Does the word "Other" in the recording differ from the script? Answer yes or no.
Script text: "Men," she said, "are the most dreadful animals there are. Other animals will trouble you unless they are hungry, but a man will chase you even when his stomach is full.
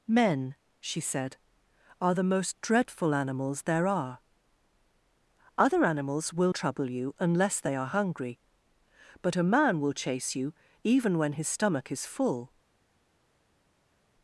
no